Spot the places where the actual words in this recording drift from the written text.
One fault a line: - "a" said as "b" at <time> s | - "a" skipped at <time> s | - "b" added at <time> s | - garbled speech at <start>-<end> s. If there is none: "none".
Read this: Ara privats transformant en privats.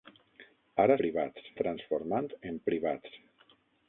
none